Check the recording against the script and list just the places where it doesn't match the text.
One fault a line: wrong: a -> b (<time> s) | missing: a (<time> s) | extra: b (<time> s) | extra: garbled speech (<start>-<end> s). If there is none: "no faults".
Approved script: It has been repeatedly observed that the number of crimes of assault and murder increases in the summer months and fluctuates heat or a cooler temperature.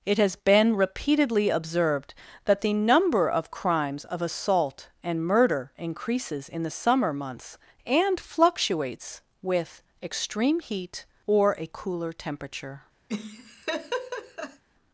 extra: with extreme (9.4 s)